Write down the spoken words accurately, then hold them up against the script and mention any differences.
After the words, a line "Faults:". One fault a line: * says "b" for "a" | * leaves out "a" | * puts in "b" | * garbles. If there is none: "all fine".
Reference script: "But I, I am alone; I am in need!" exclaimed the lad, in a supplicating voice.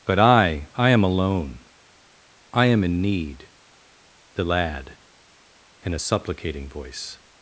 "But I, I am alone; I am in need!" the lad, in a supplicating voice.
Faults:
* leaves out "exclaimed"